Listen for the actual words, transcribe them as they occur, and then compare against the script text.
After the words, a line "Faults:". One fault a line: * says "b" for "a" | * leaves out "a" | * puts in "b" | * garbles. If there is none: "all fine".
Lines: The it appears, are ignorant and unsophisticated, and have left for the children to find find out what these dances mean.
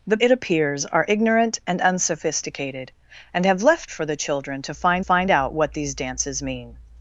The it appears, are ignorant and unsophisticated, and have left for the children to find find out what these dances mean.
Faults:
all fine